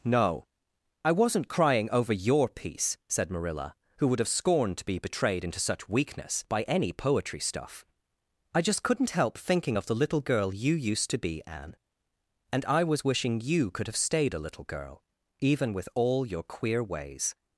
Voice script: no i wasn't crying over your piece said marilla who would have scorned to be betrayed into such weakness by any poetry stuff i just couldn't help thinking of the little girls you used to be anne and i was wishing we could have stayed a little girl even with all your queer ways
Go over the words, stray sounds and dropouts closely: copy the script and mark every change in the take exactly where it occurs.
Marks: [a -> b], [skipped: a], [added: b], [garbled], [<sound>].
no i wasn't crying over your piece said marilla who would have scorned to be betrayed into such weakness by any poetry stuff i just couldn't help thinking of the little [girls -> girl] you used to be anne and i was wishing [we -> you] could have stayed a little girl even with all your queer ways